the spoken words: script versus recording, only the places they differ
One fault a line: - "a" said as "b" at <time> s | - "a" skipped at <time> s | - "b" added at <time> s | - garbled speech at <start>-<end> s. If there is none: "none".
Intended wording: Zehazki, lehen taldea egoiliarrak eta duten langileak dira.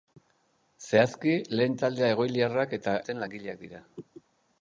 none